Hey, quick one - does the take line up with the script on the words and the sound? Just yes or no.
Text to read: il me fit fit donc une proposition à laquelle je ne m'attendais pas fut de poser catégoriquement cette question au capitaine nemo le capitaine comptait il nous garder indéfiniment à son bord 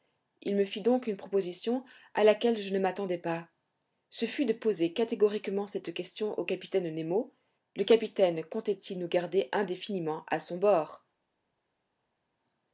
no